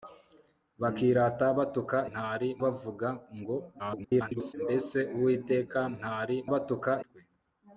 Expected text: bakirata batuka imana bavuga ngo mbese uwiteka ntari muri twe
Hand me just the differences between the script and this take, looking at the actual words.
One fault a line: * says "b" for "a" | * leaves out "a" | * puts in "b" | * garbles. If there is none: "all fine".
* says "ntari" for "imana"
* garbles
* says "batuka" for "muri"